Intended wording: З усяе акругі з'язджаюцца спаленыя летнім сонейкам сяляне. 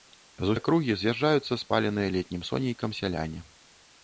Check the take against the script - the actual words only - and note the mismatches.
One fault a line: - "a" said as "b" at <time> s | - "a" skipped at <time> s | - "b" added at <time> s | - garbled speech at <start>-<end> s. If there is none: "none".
- "усяе" skipped at 0.6 s